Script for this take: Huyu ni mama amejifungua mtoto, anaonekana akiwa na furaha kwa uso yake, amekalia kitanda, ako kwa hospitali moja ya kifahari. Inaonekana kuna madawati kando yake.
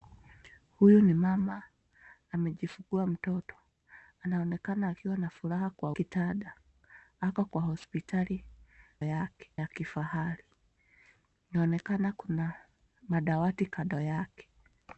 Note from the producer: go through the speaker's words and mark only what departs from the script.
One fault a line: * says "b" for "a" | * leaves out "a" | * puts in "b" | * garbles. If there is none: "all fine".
* leaves out "uso yake amekalia"
* says "yake" for "moja"